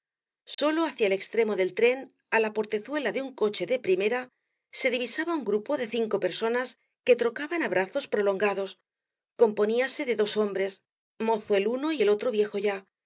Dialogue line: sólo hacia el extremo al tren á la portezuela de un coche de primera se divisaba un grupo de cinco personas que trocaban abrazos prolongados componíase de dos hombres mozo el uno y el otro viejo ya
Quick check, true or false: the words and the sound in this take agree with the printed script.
false